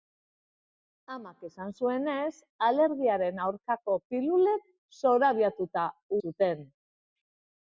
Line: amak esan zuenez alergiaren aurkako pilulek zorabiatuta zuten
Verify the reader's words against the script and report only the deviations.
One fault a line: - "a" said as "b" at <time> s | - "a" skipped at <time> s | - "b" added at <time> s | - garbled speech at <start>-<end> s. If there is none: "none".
none